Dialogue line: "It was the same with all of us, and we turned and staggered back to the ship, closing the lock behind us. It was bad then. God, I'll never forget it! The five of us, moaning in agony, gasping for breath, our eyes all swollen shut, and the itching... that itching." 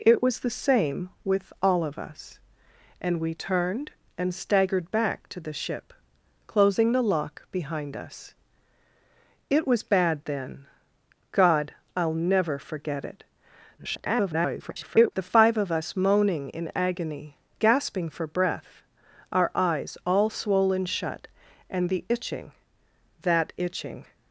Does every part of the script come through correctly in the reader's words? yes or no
no